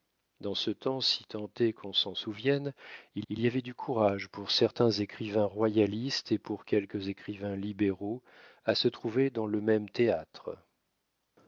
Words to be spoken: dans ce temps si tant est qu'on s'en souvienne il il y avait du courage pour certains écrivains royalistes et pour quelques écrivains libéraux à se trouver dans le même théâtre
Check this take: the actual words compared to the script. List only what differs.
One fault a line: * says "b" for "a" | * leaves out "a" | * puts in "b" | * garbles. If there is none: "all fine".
all fine